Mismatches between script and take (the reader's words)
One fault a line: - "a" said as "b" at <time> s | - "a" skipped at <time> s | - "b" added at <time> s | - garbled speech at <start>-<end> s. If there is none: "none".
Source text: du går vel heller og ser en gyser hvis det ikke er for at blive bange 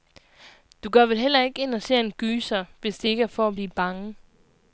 - "ikke ind" added at 1.4 s